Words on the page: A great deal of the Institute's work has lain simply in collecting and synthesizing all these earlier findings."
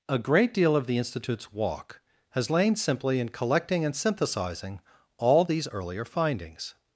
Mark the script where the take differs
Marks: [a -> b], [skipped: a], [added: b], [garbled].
A great deal of the Institute's [work -> walk] has lain simply in collecting and synthesizing all these earlier findings."